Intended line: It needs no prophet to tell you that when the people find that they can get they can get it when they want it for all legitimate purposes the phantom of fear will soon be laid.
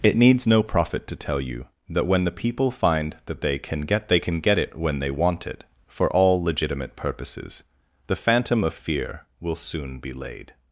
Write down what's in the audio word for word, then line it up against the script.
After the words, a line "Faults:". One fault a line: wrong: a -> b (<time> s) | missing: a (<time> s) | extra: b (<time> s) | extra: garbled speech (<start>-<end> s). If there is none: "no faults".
It needs no prophet to tell you that when the people find that they can get they can get it when they want it for all legitimate purposes the phantom of fear will soon be laid.
Faults:
no faults